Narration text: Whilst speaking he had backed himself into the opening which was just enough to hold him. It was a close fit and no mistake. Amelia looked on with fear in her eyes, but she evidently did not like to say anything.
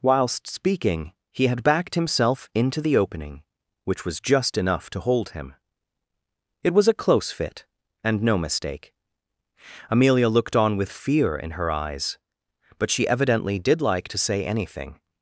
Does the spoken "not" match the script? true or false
false